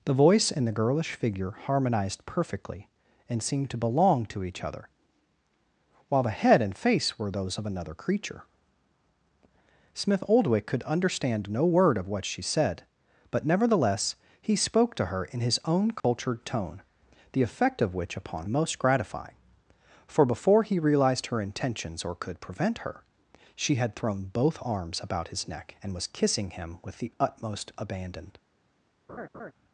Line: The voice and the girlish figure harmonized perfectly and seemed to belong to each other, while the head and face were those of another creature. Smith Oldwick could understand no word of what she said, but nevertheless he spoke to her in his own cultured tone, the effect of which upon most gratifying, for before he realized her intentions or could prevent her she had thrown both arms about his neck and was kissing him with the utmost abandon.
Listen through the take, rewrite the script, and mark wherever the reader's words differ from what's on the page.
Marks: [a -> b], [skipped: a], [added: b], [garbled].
The voice and the girlish figure harmonized perfectly and seemed to belong to each other, while the head and face were those of another creature. Smith Oldwick could understand no word of what she said, but nevertheless he spoke to her in his own cultured tone, the effect of which upon most gratifying, for before he realized her intentions or could prevent her she had thrown both arms about his neck and was kissing him with the utmost abandon.